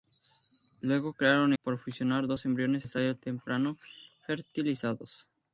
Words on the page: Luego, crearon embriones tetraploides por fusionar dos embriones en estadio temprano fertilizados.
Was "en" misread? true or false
true